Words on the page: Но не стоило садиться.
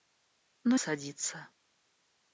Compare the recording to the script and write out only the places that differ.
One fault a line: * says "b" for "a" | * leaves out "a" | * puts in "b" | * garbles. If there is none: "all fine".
* leaves out "не стоило"